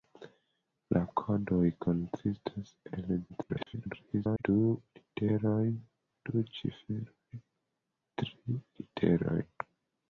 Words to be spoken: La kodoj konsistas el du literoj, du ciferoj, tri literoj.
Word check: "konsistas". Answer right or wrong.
right